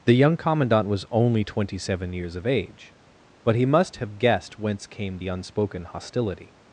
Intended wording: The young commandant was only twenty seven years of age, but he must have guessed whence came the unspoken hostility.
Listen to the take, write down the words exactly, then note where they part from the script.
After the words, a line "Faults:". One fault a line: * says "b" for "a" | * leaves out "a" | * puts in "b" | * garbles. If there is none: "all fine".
The young commandant was only twenty seven years of age, but he must have guessed whence came the unspoken hostility.
Faults:
all fine